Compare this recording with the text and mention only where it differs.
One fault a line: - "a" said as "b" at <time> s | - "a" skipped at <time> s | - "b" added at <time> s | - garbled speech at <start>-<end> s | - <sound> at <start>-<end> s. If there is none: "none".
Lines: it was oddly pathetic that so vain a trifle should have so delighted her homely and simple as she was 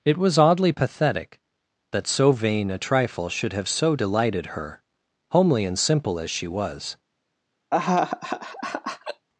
- laugh at 7.7-9.3 s